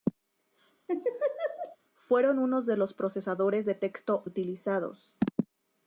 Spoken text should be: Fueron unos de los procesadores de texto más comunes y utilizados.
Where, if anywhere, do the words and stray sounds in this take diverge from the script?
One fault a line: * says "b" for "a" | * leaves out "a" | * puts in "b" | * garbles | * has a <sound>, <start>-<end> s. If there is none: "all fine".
* has a laugh, 0.9-1.8 s
* leaves out "más comunes y"